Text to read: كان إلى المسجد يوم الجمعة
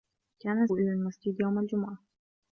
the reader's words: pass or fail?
pass